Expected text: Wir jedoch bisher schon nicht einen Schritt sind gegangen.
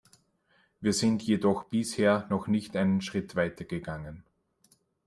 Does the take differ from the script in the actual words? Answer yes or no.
yes